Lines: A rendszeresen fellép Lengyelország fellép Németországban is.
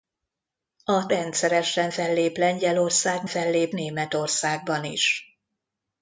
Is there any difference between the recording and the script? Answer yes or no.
no